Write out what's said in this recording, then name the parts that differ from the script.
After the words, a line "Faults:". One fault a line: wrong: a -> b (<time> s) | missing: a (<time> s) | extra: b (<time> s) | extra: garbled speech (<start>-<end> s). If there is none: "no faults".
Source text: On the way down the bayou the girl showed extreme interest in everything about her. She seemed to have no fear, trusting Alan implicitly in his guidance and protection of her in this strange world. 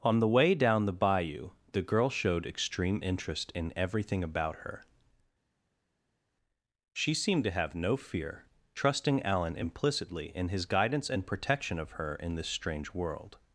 On the way down the bayou the girl showed extreme interest in everything about her. She seemed to have no fear, trusting Alan implicitly in his guidance and protection of her in this strange world.
Faults:
no faults